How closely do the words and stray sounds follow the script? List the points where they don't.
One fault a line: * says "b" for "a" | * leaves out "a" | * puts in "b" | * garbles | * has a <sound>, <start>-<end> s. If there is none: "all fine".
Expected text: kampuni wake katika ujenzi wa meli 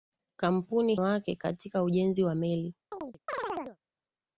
* has a chirp, 2.9-3.8 s